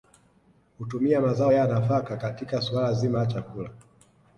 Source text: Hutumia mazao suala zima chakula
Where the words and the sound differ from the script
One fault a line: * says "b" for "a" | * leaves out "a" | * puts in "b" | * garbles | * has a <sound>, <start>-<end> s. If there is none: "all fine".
* puts in "ya nafaka katika"
* puts in "la"